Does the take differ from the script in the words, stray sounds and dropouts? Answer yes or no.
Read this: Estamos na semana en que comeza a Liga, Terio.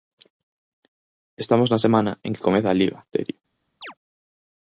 yes